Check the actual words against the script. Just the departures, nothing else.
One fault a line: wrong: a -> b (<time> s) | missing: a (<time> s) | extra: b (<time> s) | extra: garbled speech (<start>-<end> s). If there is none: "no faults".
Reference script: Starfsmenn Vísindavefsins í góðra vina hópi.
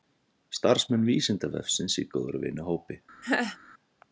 no faults